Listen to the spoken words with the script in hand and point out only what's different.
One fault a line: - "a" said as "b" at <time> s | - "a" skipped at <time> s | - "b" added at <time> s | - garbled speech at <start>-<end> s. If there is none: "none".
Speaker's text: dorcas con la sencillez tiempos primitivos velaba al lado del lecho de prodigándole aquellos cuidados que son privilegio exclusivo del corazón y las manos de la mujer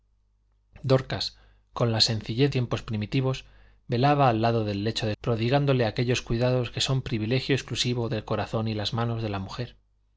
none